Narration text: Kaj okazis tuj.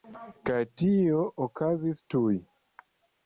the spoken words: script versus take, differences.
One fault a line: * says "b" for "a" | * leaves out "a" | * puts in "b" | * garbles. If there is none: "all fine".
* puts in "tio"